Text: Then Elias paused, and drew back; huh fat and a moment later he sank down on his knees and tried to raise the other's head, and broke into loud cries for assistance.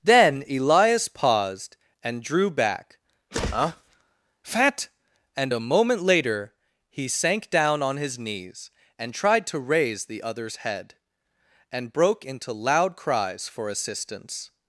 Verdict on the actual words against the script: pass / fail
pass